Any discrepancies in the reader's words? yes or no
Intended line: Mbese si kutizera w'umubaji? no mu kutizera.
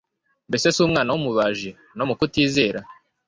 yes